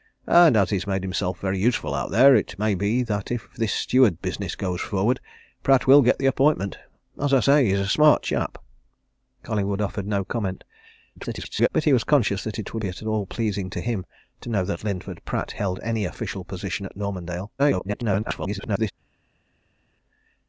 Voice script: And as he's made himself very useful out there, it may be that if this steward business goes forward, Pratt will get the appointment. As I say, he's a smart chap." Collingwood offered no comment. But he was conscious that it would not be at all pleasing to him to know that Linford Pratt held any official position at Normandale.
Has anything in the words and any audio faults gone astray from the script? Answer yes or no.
yes